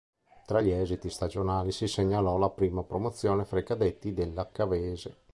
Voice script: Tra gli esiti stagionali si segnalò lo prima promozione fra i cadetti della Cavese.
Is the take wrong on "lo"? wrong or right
wrong